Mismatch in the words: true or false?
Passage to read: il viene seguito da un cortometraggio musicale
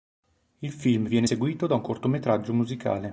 true